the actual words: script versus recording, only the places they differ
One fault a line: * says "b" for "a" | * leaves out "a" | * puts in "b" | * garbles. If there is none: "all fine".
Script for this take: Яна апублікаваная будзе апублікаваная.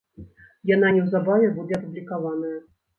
* says "неўзабаве" for "апублікаваная"